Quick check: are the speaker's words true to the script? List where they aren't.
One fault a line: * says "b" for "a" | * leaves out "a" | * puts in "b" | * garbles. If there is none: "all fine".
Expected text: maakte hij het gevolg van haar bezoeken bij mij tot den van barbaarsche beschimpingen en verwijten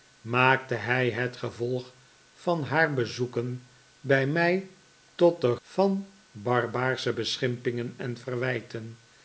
all fine